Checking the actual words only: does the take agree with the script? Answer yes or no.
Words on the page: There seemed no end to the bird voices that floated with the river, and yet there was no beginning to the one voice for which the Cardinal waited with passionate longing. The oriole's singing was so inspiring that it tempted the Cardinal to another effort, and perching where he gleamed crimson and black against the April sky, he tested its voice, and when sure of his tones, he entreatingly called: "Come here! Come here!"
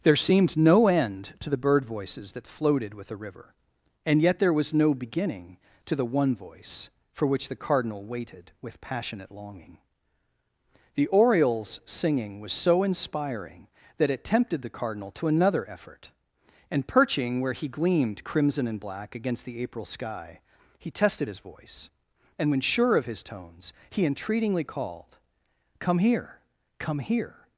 no